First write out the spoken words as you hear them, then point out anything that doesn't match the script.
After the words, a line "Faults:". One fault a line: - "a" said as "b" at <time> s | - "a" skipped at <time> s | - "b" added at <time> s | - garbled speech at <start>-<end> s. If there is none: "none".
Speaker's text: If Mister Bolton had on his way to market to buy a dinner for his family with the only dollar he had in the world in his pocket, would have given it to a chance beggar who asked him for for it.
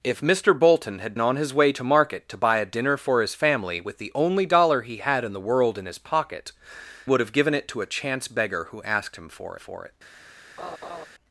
If Mister Bolton had on his way to market to buy a dinner for his family with the only dollar he had in the world in his pocket, would have given it to a chance beggar who asked him for for it.
Faults:
none